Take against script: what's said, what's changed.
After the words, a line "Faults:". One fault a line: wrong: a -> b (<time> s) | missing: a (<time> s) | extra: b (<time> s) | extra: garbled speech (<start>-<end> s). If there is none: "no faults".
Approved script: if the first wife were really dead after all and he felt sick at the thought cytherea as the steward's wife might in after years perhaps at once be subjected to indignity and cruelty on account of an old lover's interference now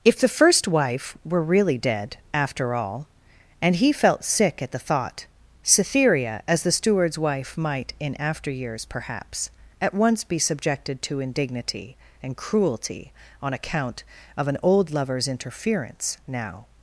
if the first wife were really dead after all and he felt sick at the thought cytherea as the steward's wife might in after years perhaps at once be subjected to indignity and cruelty on account of an old lover's interference now
Faults:
no faults